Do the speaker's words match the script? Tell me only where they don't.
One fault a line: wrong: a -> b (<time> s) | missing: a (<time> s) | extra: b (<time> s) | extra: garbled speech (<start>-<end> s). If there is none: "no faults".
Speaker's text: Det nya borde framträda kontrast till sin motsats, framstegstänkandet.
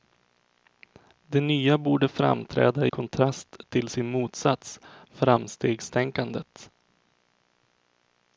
no faults